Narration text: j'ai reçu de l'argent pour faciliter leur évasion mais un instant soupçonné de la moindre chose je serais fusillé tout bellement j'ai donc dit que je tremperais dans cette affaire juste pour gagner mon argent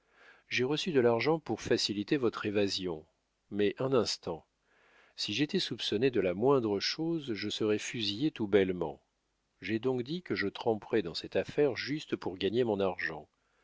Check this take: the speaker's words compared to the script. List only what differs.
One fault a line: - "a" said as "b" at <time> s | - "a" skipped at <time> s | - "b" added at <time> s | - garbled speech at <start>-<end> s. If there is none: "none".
- "leur" said as "votre" at 2.2 s
- "si j'étais" added at 5.2 s